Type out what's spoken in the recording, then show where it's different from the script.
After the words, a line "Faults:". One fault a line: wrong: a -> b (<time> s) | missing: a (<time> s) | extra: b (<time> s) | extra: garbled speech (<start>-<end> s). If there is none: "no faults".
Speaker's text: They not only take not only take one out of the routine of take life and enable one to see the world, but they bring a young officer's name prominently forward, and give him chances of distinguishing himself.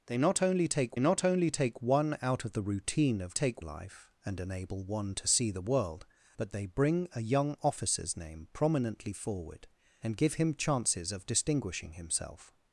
They not only take not only take one out of the routine of take life and enable one to see the world, but they bring a young officer's name prominently forward, and give him chances of distinguishing himself.
Faults:
no faults